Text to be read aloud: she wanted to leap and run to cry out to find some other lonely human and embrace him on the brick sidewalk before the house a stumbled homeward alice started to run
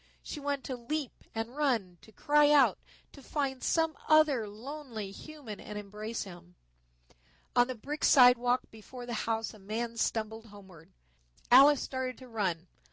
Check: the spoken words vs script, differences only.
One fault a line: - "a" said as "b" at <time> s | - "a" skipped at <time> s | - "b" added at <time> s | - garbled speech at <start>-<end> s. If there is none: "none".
- "man" added at 9.6 s